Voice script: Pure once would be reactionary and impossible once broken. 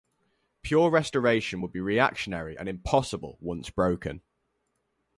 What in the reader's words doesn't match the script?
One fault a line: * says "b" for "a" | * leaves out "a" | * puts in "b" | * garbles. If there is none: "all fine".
* says "restoration" for "once"